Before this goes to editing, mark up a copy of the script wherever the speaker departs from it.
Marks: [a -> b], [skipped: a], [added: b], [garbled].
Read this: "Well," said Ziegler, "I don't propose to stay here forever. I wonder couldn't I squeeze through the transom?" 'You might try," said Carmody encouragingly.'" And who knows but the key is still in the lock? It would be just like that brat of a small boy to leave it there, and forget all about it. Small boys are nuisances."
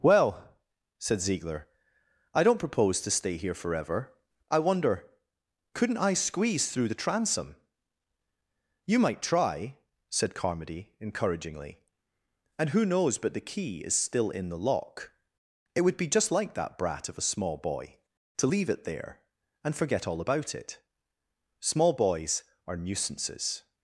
"Well," said Ziegler, "I don't propose to stay here forever. I wonder couldn't I squeeze through the transom?" 'You might try," said Carmody encouragingly.'" And who knows but the key is still in the lock? It would be just like that brat of a small boy to leave it there, and forget all about it. Small boys are nuisances."